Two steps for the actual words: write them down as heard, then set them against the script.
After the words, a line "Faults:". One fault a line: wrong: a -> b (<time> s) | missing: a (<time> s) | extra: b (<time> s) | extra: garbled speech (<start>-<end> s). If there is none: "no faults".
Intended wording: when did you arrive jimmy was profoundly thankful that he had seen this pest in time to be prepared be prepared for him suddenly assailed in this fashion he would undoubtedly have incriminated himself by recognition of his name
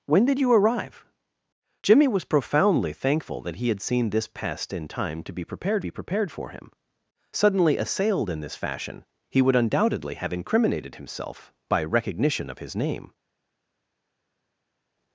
when did you arrive jimmy was profoundly thankful that he had seen this pest in time to be prepared be prepared for him suddenly assailed in this fashion he would undoubtedly have incriminated himself by recognition of his name
Faults:
no faults